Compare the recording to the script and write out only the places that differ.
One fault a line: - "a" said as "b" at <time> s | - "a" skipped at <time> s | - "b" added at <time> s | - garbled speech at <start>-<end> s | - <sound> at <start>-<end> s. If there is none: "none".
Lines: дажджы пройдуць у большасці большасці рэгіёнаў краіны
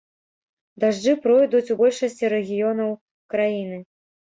- "большасці" skipped at 2.3 s